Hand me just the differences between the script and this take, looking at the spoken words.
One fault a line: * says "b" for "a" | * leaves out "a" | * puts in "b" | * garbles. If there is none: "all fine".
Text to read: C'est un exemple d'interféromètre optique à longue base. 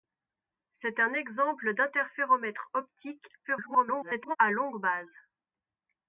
* garbles